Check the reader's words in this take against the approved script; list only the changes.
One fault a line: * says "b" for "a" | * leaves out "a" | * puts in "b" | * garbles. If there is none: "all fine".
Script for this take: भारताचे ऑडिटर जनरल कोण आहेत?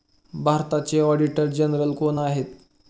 all fine